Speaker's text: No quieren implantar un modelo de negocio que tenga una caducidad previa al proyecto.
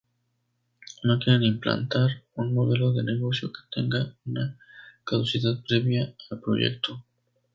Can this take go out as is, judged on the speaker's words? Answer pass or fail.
pass